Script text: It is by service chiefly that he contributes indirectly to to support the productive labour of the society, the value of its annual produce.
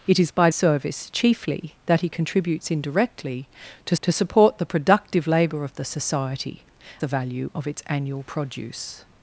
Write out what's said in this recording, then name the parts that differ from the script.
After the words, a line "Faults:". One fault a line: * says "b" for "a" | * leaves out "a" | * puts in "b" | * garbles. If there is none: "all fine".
It is by service chiefly that he contributes indirectly to to support the productive labour of the society, the value of its annual produce.
Faults:
all fine